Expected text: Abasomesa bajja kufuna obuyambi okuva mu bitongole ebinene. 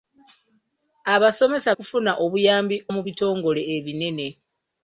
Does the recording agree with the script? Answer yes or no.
no